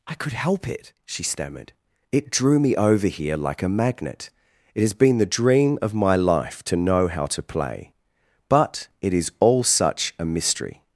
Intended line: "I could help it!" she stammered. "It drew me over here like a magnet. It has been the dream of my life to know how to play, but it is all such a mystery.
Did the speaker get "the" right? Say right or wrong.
right